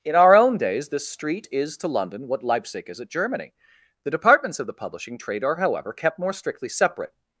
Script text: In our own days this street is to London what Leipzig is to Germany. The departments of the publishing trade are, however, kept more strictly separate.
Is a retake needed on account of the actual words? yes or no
yes